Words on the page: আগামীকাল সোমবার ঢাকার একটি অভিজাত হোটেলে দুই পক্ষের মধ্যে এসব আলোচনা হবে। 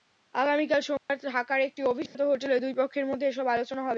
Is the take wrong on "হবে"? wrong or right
right